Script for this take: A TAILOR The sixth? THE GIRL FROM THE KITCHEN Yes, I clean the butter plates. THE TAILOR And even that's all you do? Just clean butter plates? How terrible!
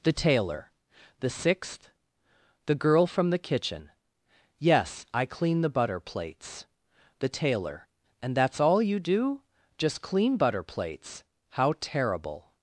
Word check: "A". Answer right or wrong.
wrong